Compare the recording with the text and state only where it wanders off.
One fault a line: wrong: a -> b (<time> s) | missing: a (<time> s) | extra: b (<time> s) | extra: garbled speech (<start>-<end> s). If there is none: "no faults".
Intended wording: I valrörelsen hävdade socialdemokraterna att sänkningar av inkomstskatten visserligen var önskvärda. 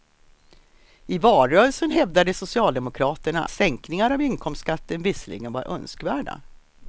missing: att (3.4 s)